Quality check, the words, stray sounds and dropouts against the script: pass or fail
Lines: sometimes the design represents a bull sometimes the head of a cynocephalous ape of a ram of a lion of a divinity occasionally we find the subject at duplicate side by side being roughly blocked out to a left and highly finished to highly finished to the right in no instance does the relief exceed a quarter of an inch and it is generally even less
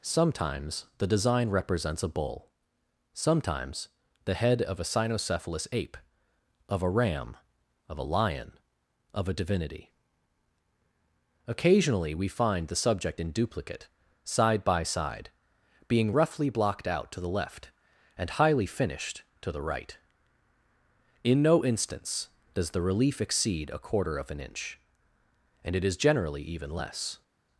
fail